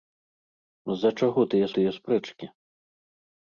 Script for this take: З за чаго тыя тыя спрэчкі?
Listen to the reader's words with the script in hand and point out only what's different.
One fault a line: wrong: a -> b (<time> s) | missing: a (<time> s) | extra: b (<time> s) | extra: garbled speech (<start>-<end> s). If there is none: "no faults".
no faults